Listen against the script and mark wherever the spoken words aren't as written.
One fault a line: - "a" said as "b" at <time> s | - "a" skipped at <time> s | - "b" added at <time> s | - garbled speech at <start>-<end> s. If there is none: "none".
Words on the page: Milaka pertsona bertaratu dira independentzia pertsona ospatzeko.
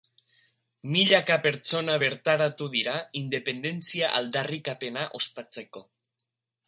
- "pertsona" said as "aldarrikapena" at 4.2 s